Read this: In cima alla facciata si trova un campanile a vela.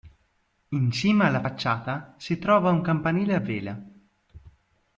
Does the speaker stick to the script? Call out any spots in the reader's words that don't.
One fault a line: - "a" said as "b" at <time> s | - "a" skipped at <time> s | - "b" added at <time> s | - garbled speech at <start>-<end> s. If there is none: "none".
none